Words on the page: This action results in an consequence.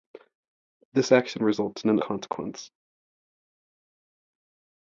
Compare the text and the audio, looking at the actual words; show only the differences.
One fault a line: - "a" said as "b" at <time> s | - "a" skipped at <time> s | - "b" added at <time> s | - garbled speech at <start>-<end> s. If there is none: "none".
none